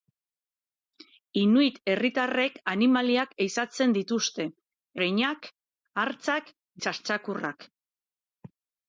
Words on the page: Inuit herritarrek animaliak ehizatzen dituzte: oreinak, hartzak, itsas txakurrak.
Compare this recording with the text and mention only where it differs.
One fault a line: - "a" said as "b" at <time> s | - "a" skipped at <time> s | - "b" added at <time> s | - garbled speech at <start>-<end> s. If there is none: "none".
none